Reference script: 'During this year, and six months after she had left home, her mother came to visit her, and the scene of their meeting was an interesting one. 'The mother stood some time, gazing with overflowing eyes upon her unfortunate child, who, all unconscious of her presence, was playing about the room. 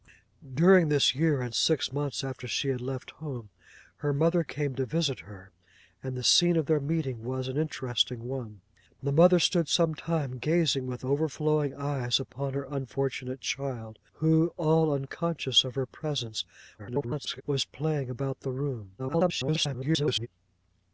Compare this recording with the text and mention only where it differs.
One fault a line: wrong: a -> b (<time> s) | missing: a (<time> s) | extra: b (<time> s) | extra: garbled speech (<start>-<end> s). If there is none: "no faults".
extra: garbled speech (16.8-17.4 s)
extra: garbled speech (19.0-20.3 s)